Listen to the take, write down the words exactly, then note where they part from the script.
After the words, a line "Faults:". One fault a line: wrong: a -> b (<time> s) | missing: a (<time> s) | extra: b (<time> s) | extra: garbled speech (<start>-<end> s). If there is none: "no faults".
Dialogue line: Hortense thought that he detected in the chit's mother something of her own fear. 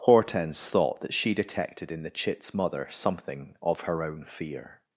Hortense thought that she detected in the chit's mother something of her own fear.
Faults:
wrong: he -> she (1.1 s)